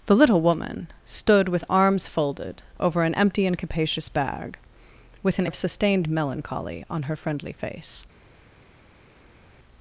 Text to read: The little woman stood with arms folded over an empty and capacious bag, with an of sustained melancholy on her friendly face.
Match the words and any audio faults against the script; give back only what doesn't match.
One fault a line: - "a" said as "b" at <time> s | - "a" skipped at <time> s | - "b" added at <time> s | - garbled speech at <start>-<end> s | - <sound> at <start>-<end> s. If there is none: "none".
none